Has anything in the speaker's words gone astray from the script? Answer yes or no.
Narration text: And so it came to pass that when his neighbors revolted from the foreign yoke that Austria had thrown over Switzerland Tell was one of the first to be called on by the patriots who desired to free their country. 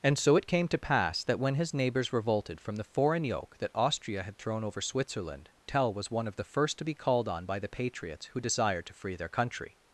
no